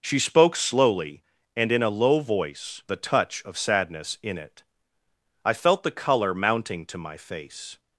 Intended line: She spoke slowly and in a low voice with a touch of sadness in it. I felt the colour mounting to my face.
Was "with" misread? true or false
true